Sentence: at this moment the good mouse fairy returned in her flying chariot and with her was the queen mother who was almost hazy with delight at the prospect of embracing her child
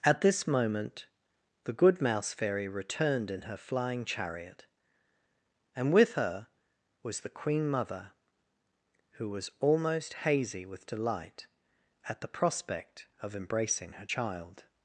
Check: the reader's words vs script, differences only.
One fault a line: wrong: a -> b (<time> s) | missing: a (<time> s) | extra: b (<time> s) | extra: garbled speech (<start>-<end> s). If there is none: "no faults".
no faults